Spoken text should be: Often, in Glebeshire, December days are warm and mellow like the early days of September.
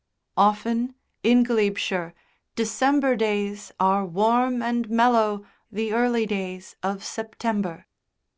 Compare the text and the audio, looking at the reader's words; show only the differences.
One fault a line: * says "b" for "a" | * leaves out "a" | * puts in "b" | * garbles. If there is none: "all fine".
* leaves out "like"